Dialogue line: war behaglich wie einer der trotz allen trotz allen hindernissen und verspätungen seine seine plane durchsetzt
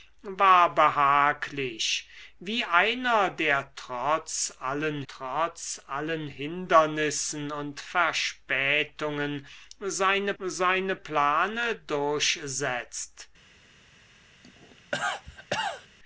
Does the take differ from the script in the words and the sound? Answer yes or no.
yes